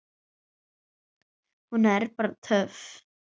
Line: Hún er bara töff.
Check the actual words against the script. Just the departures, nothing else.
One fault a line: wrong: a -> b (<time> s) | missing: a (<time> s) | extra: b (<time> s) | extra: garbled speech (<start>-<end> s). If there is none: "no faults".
no faults